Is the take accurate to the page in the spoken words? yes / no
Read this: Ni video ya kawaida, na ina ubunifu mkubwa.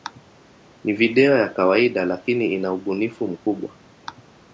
no